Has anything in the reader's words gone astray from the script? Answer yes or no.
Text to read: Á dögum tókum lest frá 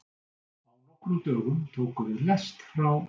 yes